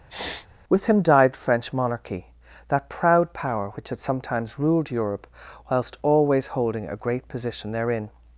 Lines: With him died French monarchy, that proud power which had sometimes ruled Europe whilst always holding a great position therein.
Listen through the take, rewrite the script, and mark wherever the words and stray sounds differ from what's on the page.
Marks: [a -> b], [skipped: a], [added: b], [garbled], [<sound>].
[sniff] With him died French monarchy, that proud power which had sometimes ruled Europe whilst always holding a great position therein.